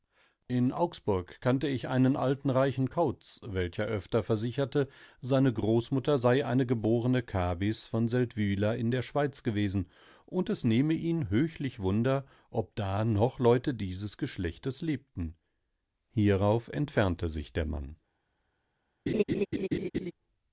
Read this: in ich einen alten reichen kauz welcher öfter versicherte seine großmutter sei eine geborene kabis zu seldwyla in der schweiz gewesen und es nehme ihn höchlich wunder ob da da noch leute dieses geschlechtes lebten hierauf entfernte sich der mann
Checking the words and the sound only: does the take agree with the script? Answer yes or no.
no